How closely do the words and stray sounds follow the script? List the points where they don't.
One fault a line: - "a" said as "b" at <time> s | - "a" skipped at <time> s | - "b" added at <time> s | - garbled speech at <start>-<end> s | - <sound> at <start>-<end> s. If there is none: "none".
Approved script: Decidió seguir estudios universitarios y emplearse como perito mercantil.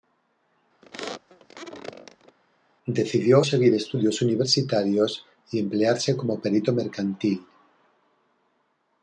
- squeak at 0.8-2.4 s